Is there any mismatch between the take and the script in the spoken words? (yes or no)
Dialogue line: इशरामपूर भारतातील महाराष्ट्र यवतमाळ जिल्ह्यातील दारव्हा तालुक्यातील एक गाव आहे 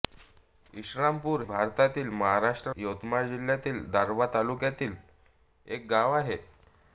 no